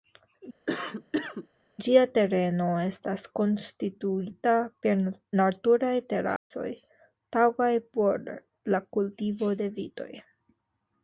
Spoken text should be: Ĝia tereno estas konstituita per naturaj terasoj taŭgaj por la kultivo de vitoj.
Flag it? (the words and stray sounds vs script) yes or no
yes